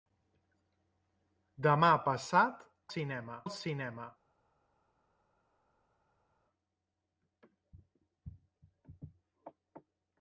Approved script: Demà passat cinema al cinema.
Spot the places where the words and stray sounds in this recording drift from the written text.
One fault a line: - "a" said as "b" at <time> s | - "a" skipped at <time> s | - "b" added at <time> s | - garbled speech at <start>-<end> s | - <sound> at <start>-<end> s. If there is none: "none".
none